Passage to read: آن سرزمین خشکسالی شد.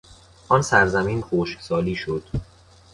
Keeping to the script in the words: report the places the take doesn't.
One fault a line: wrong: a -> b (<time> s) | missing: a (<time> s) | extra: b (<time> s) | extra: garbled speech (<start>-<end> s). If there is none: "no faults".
no faults